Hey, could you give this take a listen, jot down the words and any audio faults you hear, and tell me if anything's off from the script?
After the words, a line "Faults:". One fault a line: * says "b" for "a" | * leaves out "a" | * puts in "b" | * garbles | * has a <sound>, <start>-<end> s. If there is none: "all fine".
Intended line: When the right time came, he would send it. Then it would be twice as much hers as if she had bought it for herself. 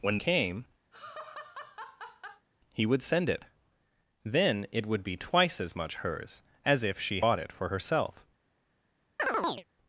When came, he would send it. Then it would be twice as much hers as if she bought it for herself.
Faults:
* leaves out "the right time"
* has a laugh, 0.9-2.5 s
* leaves out "had"
* has a chirp, 9.2-9.6 s